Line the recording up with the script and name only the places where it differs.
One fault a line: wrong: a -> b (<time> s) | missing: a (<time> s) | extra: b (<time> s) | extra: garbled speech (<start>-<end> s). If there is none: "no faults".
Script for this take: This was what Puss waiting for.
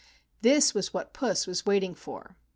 extra: was (1.4 s)